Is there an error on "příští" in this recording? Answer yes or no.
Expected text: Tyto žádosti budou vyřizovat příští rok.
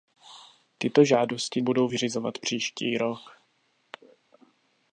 no